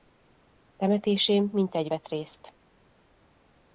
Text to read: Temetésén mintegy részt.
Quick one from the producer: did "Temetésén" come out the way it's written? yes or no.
yes